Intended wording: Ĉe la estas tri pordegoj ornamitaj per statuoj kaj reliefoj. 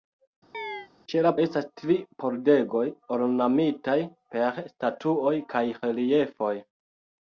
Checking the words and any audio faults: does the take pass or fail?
fail